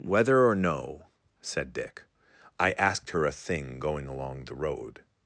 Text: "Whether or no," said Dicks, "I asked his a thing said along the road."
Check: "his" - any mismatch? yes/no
yes